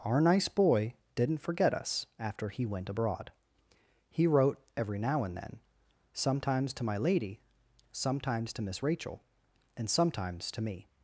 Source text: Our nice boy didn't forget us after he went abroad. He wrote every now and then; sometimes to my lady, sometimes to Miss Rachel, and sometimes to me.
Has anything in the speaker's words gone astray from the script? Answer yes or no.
no